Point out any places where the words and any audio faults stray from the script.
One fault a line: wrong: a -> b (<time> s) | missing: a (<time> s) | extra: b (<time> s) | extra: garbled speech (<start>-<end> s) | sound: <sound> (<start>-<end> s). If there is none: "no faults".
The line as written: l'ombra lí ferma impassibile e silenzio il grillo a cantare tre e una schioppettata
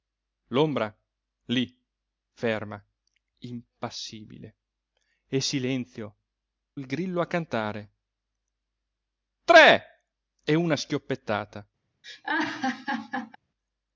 sound: laugh (12.0-13.4 s)